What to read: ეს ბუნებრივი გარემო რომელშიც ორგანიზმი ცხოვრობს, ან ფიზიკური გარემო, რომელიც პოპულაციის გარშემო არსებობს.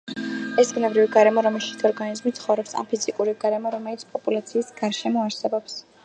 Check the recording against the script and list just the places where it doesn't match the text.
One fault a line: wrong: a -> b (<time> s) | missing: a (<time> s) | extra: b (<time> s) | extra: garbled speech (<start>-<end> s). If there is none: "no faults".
no faults